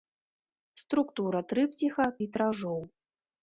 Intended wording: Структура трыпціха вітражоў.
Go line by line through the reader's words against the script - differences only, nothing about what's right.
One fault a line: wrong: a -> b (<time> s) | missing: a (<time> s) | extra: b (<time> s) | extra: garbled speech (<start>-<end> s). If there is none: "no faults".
no faults